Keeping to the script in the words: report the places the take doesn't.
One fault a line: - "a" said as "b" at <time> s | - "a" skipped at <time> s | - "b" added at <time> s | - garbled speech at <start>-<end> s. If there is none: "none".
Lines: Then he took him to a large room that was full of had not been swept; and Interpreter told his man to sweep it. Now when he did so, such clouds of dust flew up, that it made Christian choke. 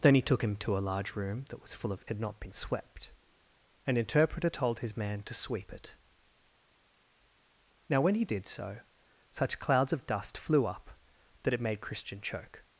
none